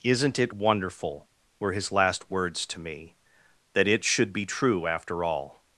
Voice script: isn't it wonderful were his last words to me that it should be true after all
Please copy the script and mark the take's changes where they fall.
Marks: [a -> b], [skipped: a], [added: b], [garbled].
isn't it wonderful were his last words to me that it should be true after all